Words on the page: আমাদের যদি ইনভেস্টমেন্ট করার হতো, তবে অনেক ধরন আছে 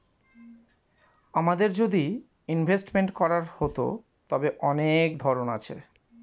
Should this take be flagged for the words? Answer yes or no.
no